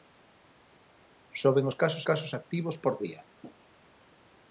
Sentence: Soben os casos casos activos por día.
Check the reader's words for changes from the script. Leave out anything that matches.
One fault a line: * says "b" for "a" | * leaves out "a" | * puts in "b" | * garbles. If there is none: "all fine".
all fine